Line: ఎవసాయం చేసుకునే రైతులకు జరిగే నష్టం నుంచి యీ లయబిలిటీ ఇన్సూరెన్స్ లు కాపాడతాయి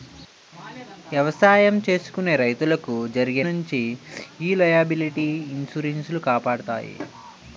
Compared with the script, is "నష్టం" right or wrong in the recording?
wrong